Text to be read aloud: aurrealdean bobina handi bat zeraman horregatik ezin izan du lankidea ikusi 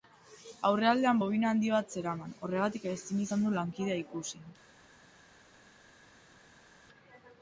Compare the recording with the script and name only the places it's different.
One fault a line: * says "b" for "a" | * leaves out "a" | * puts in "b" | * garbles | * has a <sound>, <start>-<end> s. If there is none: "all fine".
all fine